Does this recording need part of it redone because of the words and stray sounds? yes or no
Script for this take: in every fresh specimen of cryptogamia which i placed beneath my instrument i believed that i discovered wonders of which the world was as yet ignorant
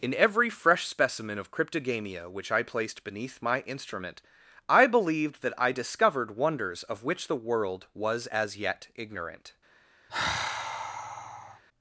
yes